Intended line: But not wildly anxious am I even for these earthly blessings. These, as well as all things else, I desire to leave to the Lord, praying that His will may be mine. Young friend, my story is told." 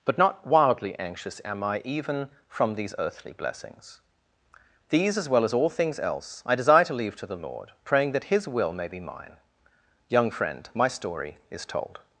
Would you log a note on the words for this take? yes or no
yes